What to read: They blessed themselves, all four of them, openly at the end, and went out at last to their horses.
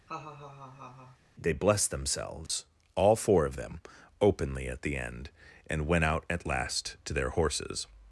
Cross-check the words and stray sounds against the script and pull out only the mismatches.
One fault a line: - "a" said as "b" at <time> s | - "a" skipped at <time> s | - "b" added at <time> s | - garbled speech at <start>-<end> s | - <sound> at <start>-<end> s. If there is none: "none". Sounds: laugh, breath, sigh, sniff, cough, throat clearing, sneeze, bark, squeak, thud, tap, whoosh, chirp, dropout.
- laugh at 0.1-1.2 s
- dropout at 2.5-2.5 s